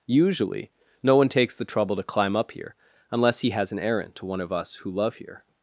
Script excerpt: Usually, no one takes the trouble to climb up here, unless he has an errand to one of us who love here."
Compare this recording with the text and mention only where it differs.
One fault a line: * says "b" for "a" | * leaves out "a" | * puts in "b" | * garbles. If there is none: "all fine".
all fine